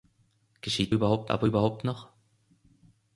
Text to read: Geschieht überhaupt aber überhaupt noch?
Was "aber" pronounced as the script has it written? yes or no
yes